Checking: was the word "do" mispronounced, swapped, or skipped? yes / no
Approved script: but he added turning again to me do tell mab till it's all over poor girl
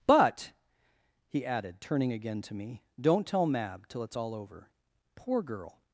yes